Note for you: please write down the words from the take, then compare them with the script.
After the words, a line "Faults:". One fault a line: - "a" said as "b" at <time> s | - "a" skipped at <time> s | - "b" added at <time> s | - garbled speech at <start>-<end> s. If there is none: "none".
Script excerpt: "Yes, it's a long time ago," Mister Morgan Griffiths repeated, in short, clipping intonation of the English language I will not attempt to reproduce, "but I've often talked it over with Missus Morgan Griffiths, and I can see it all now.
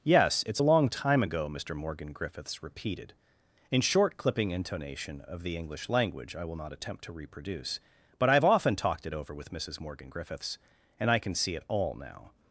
"Yes, it's a long time ago," Mister Morgan Griffiths repeated, in short, clipping intonation of the English language I will not attempt to reproduce, "but I've often talked it over with Missus Morgan Griffiths, and I can see it all now.
Faults:
none